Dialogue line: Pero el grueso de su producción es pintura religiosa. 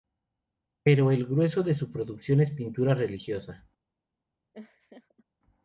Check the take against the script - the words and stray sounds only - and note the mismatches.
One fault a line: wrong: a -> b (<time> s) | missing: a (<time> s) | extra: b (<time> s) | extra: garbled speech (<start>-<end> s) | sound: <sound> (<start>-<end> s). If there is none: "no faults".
sound: laugh (4.5-5.2 s)